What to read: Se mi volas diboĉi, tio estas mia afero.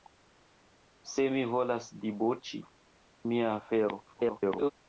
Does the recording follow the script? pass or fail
fail